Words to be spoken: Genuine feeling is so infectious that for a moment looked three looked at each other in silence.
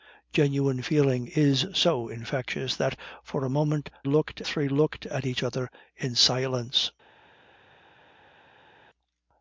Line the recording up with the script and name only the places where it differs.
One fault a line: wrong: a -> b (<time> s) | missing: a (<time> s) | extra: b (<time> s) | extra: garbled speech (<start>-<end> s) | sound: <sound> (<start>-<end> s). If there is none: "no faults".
no faults